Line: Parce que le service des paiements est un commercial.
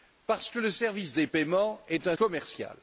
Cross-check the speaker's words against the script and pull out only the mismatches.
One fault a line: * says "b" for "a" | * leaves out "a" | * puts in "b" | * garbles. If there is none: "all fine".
all fine